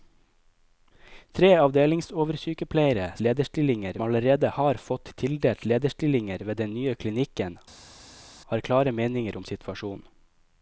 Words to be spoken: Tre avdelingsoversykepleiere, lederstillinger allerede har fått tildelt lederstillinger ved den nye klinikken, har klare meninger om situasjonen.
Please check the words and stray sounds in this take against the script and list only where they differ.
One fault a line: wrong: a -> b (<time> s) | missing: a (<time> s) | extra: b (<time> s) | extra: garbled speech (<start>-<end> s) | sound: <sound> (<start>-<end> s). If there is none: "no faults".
no faults